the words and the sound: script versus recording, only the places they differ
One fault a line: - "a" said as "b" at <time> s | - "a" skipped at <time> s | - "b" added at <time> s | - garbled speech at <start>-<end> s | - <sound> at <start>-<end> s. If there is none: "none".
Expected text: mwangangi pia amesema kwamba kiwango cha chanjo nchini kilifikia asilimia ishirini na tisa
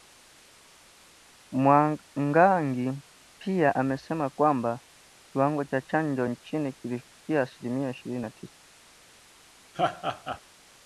- laugh at 9.7-10.4 s